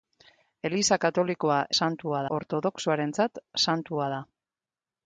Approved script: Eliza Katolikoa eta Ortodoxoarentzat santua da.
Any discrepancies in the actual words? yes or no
yes